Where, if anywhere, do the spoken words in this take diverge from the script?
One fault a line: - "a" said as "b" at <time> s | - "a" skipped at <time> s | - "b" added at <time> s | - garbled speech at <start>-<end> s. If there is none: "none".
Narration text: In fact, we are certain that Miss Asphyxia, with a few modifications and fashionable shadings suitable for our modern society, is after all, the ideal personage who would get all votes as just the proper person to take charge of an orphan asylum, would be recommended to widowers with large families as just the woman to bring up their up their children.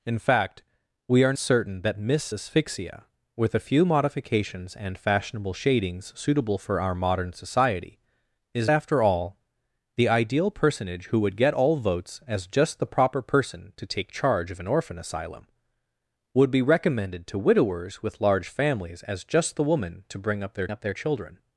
none